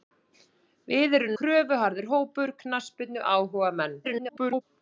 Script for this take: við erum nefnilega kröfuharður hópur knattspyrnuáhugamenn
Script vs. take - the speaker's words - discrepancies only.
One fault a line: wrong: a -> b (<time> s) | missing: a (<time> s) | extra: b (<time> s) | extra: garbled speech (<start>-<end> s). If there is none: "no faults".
missing: nefnilega (1.4 s)
extra: garbled speech (4.0-4.6 s)